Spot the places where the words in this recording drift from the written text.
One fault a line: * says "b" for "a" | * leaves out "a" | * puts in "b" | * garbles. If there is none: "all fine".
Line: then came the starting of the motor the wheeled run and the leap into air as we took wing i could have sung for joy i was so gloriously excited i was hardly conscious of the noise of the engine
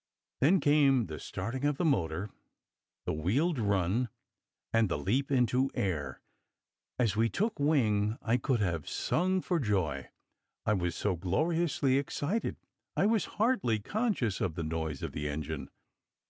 all fine